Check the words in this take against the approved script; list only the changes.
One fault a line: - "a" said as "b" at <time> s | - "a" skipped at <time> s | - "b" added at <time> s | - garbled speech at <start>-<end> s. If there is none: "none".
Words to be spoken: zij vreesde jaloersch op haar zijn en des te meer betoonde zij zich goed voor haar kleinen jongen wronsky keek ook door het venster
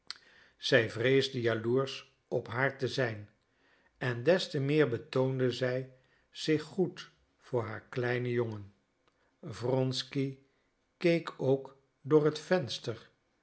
- "te" added at 2.8 s